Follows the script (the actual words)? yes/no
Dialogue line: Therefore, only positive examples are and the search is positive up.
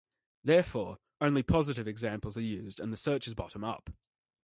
no